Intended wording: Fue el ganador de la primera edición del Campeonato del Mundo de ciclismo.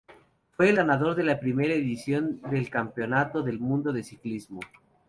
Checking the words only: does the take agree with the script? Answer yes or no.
yes